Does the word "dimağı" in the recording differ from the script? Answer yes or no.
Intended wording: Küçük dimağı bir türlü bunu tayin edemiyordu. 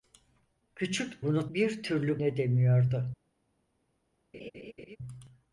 yes